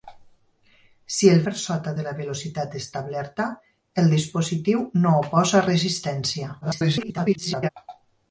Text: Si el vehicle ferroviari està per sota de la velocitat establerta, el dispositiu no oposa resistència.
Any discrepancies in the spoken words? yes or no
yes